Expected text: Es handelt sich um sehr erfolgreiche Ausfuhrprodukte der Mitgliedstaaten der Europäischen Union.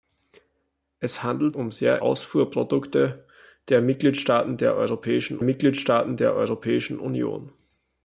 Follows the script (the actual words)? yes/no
no